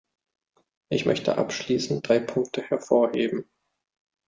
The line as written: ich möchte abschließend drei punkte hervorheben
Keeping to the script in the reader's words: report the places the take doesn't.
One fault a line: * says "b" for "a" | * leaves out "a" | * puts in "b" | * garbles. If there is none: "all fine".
all fine